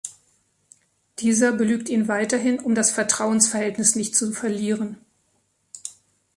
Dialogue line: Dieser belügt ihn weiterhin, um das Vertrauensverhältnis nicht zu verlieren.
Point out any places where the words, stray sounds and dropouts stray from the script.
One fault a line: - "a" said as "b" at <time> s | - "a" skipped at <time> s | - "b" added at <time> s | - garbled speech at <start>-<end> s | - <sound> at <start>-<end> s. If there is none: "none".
none